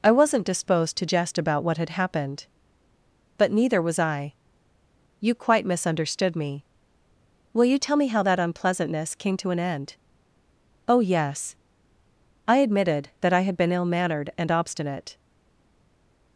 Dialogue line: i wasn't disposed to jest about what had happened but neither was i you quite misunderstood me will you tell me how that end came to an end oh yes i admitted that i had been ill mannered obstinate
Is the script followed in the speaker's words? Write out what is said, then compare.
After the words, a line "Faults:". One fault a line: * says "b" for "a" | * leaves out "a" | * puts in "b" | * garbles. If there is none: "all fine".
i wasn't disposed to jest about what had happened but neither was i you quite misunderstood me will you tell me how that unpleasantness came to an end oh yes i admitted that i had been ill mannered and obstinate
Faults:
* says "unpleasantness" for "end"
* puts in "and"